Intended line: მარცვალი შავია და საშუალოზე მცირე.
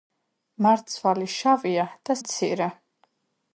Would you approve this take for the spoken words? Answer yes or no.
no